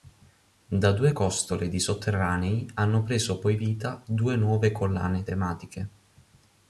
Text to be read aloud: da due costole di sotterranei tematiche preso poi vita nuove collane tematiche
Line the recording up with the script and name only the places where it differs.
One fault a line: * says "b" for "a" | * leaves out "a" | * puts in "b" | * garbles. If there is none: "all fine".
* says "hanno" for "tematiche"
* puts in "due"